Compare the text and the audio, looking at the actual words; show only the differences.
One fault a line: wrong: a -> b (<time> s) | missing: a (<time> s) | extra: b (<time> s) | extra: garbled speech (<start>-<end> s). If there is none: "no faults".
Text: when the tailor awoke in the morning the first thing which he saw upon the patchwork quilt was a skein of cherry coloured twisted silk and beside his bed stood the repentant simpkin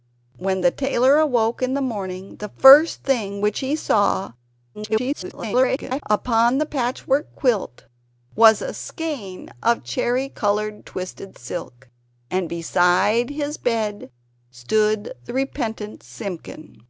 extra: garbled speech (4.7-6.0 s)